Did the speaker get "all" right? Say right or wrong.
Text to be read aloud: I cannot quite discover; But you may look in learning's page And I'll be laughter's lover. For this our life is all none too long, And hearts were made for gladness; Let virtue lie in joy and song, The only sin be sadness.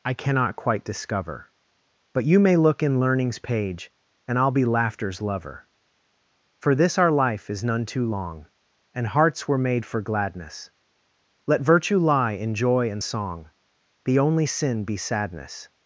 wrong